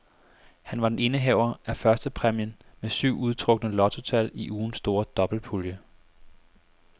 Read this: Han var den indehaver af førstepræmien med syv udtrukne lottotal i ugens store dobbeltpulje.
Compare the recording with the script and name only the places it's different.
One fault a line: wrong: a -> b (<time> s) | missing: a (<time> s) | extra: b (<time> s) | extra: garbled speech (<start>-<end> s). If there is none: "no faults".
no faults